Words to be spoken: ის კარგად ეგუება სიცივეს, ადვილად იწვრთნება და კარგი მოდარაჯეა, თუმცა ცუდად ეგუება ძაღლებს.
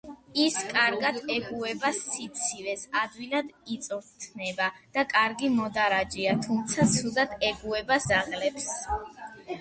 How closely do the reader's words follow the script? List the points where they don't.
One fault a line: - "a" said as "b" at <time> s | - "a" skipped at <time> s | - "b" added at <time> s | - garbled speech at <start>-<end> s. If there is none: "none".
none